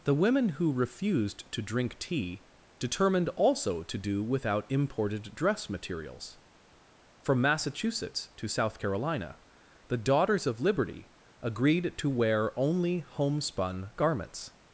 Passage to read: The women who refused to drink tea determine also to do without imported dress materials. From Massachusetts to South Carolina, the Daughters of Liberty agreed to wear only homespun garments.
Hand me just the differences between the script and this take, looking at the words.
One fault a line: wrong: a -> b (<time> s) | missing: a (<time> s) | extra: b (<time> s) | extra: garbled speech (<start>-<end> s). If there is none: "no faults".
wrong: determine -> determined (2.8 s)